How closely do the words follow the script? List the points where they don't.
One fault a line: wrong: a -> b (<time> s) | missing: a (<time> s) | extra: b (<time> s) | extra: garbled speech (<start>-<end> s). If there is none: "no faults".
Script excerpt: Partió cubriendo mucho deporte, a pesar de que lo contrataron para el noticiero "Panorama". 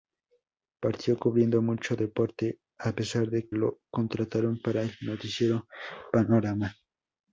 missing: que (3.5 s)